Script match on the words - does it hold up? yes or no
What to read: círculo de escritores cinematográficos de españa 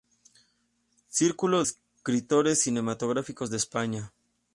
no